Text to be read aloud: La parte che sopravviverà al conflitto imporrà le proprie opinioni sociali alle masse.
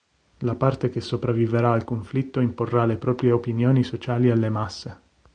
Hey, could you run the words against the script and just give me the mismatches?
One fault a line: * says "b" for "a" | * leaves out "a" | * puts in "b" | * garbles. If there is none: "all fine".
all fine